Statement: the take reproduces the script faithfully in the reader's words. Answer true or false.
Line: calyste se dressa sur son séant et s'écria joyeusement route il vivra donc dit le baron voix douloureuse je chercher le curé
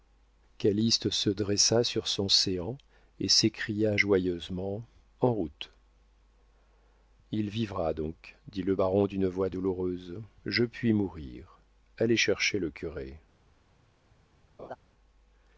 false